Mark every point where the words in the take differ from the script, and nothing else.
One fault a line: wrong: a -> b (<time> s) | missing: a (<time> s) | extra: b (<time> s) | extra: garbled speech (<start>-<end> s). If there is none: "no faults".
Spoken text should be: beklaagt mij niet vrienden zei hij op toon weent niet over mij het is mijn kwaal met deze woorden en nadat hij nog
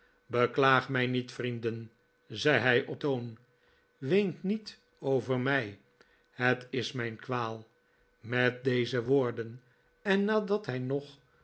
no faults